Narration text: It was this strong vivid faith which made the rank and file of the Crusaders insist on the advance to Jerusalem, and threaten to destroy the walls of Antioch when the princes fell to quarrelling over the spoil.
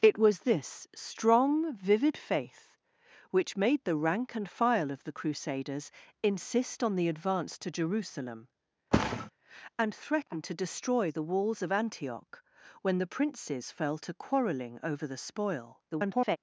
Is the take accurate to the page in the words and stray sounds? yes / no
no